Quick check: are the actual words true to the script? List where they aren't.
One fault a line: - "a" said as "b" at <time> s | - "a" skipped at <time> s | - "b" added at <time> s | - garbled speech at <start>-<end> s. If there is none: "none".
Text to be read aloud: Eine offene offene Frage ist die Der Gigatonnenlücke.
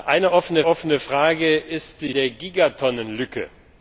none